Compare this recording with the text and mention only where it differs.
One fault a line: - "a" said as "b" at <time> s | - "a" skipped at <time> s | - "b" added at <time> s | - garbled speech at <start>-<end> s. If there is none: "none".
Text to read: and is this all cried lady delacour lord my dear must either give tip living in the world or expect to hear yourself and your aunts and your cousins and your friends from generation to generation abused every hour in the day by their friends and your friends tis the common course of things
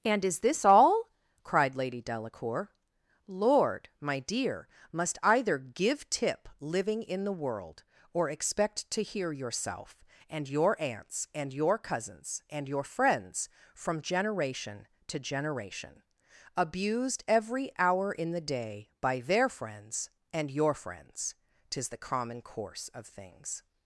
none